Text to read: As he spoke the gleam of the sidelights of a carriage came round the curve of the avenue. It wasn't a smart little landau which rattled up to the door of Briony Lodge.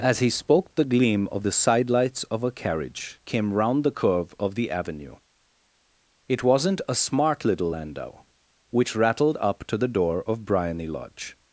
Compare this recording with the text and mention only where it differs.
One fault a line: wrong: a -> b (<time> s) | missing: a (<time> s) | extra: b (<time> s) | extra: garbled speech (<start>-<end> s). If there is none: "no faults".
no faults